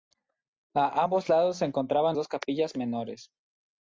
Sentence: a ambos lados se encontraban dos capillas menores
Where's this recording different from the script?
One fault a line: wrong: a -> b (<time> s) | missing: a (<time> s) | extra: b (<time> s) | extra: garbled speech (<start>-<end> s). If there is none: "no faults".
no faults